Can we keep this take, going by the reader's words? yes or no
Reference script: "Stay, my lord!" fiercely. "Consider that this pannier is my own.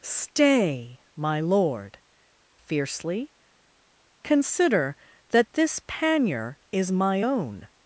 yes